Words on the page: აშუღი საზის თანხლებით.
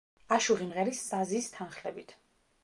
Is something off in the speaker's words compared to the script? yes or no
yes